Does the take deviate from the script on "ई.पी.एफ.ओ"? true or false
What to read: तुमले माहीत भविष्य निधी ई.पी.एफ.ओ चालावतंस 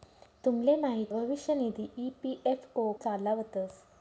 false